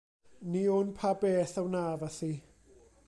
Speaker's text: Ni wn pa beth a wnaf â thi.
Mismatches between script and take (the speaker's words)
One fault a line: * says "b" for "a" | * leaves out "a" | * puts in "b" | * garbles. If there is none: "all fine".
all fine